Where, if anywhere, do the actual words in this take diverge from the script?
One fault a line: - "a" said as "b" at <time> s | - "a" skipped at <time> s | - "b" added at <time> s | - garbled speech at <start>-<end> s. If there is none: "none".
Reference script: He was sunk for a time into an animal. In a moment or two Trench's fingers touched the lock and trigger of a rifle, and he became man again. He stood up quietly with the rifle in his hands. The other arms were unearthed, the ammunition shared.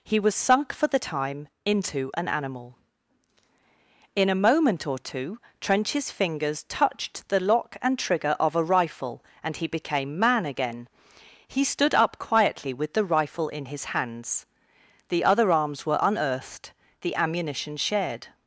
- "a" said as "the" at 0.9 s